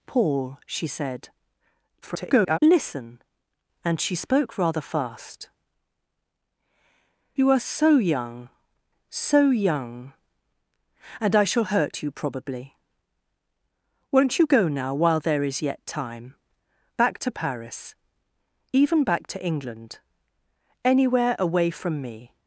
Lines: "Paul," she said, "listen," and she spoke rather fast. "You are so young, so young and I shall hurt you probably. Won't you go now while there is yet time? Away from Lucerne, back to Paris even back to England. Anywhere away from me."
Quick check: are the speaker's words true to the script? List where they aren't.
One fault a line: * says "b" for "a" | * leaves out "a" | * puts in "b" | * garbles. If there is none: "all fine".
* garbles
* leaves out "Away from Lucerne"